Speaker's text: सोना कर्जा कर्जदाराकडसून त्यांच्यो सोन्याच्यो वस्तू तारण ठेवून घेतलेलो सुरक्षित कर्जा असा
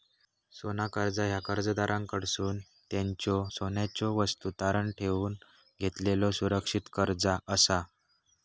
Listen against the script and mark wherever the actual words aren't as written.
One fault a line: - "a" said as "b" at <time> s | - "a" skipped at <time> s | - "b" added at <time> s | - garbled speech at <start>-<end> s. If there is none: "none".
- "ह्या" added at 1.2 s